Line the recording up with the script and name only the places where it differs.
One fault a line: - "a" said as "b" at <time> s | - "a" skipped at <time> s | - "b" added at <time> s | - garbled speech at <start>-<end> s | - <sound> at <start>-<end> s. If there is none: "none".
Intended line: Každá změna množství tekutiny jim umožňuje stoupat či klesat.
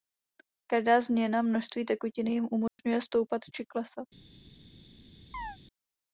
- dropout at 2.7-2.8 s
- chirp at 5.3-5.6 s